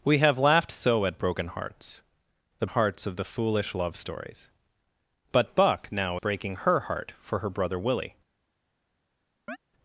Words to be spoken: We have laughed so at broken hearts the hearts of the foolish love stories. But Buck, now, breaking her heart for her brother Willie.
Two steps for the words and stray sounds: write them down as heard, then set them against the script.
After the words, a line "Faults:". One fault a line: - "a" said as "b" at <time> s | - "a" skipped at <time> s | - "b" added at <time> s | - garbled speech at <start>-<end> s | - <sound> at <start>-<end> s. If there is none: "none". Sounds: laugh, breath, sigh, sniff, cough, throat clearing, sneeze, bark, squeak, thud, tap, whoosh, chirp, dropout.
We have laughed so at broken hearts the hearts of the foolish love stories. But Buck, now, breaking her heart for her brother Willie.
Faults:
- chirp at 9.5-9.6 s